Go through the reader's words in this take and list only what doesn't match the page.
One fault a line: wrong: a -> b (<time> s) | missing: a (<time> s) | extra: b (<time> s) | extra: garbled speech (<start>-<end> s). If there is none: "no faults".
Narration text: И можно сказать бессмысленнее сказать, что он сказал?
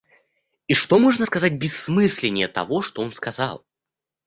extra: что (0.7 s)
wrong: сказать -> того (2.5 s)